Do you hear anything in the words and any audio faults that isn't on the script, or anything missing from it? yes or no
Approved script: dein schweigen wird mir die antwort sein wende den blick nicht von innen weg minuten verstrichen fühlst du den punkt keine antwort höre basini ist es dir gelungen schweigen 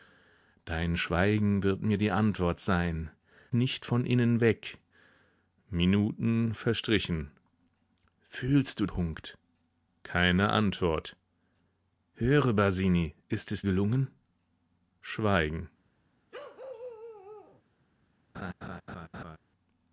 yes